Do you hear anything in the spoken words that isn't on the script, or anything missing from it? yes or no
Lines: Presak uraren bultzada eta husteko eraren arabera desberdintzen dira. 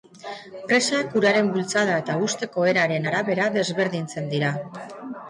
no